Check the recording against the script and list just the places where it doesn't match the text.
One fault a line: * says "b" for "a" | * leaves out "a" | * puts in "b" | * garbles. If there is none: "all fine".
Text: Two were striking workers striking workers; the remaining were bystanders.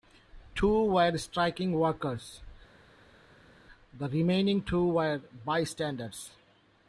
* leaves out "striking workers"
* puts in "two"